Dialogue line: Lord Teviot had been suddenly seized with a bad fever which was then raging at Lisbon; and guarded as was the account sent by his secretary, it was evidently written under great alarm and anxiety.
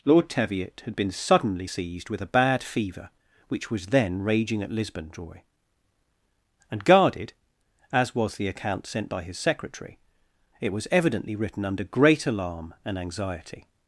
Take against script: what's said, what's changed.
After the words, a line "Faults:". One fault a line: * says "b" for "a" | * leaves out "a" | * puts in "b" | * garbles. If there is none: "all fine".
Lord Teviot had been suddenly seized with a bad fever which was then raging at Lisbon; joy and guarded as was the account sent by his secretary, it was evidently written under great alarm and anxiety.
Faults:
* puts in "joy"